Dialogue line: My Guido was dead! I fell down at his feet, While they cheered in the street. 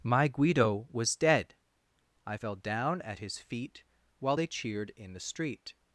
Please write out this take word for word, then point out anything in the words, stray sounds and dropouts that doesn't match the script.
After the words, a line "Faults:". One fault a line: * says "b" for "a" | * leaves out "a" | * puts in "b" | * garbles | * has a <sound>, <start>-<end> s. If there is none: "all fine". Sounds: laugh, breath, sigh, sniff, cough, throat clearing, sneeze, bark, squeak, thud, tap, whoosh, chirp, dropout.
My Guido was dead! I fell down at his feet, While they cheered in the street.
Faults:
all fine